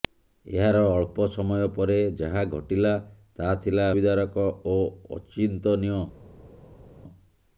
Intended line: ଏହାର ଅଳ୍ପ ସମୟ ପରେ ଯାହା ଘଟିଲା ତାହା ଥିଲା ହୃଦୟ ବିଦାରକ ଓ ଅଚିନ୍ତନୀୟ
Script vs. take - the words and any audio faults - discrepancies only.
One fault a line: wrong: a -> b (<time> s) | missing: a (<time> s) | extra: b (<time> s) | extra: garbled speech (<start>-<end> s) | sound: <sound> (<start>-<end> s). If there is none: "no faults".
missing: ହୃଦୟ (3.9 s)